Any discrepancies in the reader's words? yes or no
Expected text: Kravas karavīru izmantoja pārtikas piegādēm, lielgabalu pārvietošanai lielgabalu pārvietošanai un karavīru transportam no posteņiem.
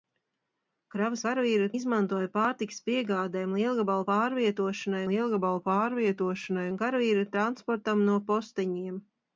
no